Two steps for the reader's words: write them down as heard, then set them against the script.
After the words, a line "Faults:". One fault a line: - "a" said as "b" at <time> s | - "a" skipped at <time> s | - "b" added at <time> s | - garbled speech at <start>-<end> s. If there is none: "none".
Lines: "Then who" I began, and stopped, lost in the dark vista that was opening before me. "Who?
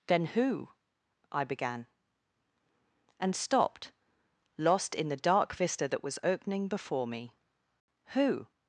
"Then who" I began, and stopped, lost in the dark vista that was opening before me. "Who?
Faults:
none